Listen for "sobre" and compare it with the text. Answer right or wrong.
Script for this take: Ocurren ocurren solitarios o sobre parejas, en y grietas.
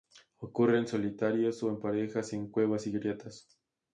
wrong